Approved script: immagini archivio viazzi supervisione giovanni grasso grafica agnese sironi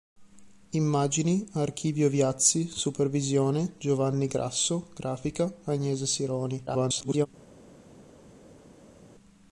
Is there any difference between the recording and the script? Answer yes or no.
yes